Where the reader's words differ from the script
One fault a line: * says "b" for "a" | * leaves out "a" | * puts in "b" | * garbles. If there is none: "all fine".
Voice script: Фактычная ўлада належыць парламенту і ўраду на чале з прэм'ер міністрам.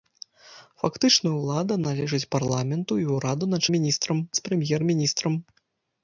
* says "міністрам" for "чале"